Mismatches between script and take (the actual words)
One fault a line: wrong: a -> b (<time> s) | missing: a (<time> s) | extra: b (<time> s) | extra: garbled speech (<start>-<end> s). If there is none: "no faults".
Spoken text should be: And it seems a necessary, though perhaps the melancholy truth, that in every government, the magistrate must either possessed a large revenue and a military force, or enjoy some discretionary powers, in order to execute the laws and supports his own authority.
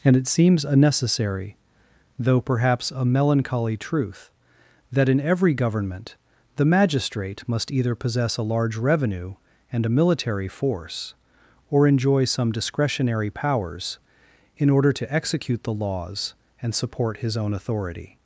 wrong: the -> a (2.9 s)
wrong: possessed -> possess (8.0 s)
wrong: supports -> support (16.8 s)